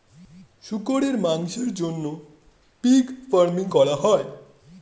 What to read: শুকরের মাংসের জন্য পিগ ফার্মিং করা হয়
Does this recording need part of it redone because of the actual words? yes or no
no